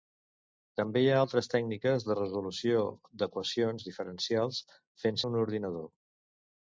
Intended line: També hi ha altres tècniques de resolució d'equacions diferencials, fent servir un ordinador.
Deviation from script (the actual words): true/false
true